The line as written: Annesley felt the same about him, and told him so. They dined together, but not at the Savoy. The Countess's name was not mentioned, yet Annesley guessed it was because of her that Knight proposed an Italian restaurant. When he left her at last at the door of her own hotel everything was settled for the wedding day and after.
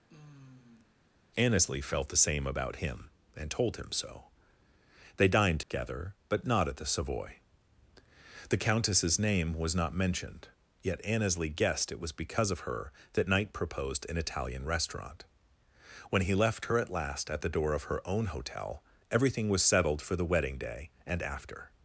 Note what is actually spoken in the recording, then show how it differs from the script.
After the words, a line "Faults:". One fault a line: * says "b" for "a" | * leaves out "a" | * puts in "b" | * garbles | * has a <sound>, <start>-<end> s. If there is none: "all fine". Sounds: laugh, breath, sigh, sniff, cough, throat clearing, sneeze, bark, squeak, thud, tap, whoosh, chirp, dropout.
Annesley felt the same about him, and told him so. They dined together, but not at the Savoy. The Countess's name was not mentioned, yet Annesley guessed it was because of her that Knight proposed an Italian restaurant. When he left her at last at the door of her own hotel everything was settled for the wedding day and after.
Faults:
* has a sigh, 0.1-1.0 s
* has a dropout, 5.6-5.7 s